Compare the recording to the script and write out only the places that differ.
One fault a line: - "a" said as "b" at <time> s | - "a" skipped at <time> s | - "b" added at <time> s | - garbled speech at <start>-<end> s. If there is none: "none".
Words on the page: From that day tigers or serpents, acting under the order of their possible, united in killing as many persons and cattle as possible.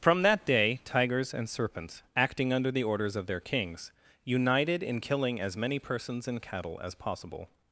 - "or" said as "and" at 1.3 s
- "order" said as "orders" at 2.8 s
- "possible" said as "kings" at 3.4 s